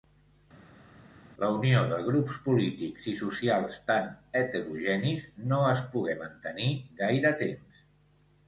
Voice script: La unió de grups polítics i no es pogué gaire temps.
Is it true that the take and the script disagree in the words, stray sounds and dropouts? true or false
true